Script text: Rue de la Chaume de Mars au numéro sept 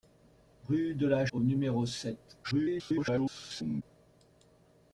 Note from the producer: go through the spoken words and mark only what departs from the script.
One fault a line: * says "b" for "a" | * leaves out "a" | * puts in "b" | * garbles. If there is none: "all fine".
* leaves out "Chaume de Mars"
* garbles